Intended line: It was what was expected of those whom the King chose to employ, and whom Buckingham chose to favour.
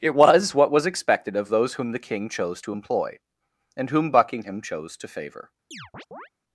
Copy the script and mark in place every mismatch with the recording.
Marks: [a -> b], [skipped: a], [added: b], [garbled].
It was what was expected of those whom the King chose to employ, and whom Buckingham chose to favour.